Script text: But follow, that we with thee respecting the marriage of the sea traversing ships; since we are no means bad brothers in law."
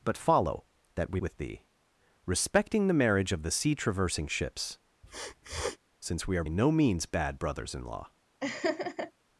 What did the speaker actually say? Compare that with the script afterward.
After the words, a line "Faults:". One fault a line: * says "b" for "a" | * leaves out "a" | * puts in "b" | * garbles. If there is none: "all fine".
But follow, that we with thee respecting the marriage of the sea traversing ships; since we are no means bad brothers in law."
Faults:
all fine